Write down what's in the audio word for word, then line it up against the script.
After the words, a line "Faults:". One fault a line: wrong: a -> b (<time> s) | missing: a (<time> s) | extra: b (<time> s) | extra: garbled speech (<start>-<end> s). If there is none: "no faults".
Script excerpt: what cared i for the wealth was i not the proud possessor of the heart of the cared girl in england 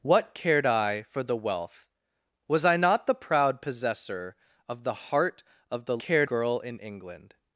what cared i for the wealth was i not the proud possessor of the heart of the cared girl in england
Faults:
no faults